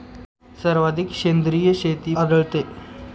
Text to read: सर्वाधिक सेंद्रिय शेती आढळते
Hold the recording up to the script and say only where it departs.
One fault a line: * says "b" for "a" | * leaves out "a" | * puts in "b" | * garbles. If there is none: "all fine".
all fine